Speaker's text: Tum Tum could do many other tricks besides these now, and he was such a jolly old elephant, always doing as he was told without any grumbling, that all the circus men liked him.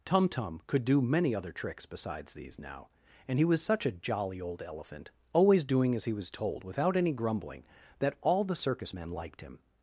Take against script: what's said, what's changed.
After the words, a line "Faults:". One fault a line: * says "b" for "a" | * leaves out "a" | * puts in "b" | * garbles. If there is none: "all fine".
Tum Tum could do many other tricks besides these now, and he was such a jolly old elephant, always doing as he was told without any grumbling, that all the circus men liked him.
Faults:
all fine